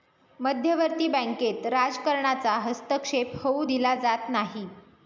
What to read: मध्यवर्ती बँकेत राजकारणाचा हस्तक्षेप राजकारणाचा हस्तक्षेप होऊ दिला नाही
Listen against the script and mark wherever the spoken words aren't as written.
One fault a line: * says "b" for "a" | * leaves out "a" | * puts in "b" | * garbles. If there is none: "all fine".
* leaves out "राजकारणाचा हस्तक्षेप"
* puts in "जात"